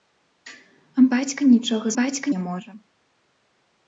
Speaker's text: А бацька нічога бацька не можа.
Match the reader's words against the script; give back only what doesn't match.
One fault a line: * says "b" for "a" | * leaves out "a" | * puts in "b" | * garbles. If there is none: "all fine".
all fine